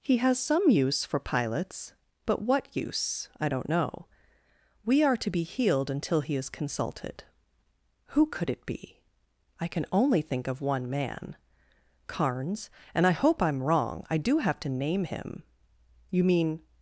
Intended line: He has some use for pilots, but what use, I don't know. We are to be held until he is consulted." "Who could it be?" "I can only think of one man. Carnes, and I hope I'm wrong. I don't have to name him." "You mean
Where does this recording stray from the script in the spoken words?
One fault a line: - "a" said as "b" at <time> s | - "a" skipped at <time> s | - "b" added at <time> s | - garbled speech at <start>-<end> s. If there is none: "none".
- "held" said as "healed" at 5.4 s
- "don't" said as "do" at 14.2 s